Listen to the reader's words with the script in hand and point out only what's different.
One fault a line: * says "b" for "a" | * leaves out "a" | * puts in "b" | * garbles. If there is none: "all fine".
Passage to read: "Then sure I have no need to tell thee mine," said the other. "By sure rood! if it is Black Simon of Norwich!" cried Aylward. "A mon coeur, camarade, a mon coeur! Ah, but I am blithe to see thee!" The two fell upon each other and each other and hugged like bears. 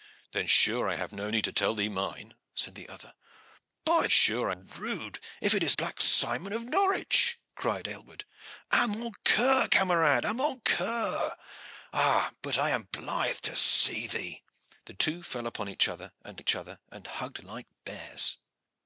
all fine